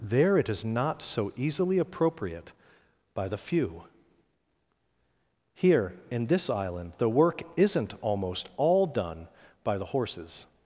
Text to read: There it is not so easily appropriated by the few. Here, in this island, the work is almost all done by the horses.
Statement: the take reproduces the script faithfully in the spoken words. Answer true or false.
false